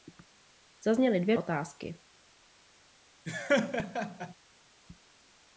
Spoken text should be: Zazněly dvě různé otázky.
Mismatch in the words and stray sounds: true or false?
true